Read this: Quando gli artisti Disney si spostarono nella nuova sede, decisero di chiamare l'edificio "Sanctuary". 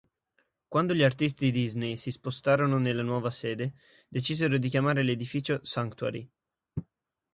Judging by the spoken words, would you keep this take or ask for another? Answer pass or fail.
pass